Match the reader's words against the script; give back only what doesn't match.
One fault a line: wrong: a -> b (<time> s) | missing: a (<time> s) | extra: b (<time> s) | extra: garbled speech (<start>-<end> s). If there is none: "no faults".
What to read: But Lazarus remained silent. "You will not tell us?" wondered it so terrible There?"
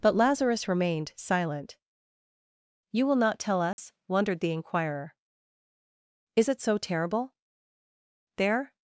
extra: the inquirer Is (4.4 s)